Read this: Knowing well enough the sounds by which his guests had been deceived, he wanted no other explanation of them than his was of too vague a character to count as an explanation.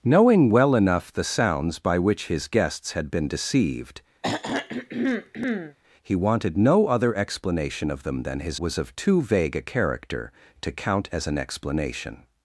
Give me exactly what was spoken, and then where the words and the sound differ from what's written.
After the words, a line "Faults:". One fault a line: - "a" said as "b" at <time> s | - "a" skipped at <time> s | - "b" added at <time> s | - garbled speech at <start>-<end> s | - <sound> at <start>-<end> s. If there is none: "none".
Knowing well enough the sounds by which his guests had been deceived, he wanted no other explanation of them than his was of too vague a character to count as an explanation.
Faults:
- throat clearing at 4.2-5.8 s